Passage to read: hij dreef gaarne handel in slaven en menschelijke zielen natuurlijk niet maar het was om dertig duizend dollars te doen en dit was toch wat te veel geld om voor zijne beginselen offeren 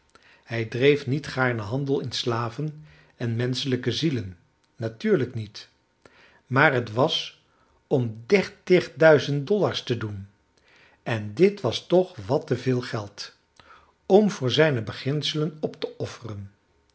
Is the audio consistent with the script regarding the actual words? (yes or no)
no